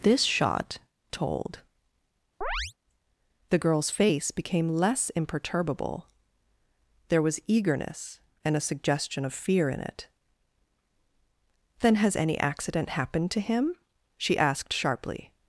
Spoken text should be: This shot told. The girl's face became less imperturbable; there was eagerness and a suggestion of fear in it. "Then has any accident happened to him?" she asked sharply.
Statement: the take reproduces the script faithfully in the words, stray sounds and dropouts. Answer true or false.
false